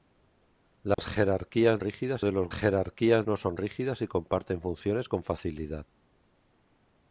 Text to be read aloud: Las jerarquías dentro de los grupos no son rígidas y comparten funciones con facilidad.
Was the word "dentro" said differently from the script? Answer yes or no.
yes